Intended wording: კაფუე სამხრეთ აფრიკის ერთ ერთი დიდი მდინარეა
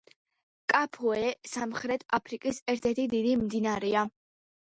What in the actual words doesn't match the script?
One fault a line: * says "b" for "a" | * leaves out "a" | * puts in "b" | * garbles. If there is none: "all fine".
all fine